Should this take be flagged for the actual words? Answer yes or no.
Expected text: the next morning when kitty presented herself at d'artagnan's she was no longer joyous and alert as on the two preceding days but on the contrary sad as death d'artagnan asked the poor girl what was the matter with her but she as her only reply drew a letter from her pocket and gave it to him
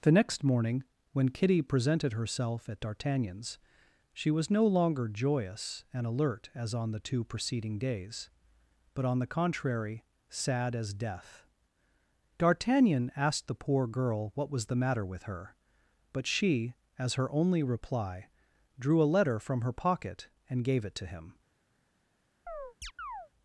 no